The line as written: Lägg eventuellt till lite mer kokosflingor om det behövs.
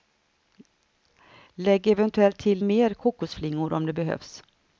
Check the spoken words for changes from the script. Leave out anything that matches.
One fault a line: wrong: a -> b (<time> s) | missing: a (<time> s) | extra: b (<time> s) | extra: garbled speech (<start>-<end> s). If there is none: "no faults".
missing: lite (2.6 s)